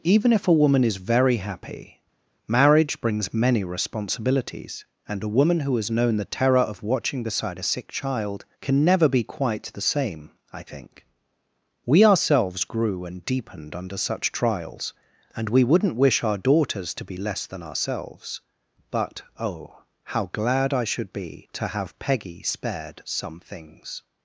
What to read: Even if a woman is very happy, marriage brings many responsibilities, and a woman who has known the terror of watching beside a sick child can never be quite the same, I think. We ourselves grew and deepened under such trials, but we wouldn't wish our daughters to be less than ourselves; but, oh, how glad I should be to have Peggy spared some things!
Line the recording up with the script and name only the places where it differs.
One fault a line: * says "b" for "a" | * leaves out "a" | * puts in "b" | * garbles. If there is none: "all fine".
* says "and" for "but"